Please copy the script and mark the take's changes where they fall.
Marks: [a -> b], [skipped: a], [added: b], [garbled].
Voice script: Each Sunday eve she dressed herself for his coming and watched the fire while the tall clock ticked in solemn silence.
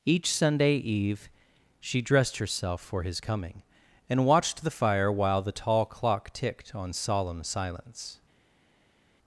Each Sunday eve she dressed herself for his coming and watched the fire while the tall clock ticked [in -> on] solemn silence.